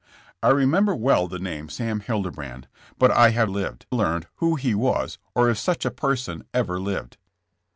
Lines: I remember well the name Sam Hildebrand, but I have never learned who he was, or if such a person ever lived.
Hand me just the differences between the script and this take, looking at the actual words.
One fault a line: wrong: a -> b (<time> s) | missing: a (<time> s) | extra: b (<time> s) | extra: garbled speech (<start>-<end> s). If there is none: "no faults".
wrong: never -> lived (3.5 s)